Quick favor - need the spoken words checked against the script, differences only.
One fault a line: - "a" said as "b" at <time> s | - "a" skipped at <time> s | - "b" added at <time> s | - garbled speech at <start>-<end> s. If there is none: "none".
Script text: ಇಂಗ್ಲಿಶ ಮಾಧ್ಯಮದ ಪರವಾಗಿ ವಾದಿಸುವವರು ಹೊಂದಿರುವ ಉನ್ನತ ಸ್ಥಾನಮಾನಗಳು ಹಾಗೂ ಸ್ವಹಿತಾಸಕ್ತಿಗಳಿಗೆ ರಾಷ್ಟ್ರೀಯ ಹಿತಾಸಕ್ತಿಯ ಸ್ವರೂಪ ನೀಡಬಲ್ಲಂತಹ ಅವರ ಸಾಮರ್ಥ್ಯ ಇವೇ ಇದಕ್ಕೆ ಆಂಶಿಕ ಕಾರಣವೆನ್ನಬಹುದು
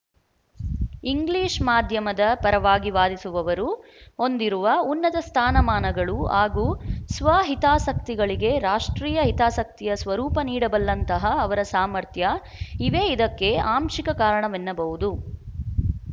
none